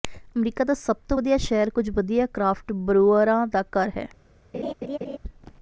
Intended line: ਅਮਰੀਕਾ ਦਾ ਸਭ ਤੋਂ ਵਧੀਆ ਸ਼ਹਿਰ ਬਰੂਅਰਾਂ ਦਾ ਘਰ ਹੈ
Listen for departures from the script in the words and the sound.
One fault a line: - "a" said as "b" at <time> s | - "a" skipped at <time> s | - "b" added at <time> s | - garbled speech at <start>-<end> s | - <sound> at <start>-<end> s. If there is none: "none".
- "ਕੁਝ ਵਧੀਆ ਕ੍ਰਾਫਟ" added at 1.7 s
- laugh at 4.5-5.2 s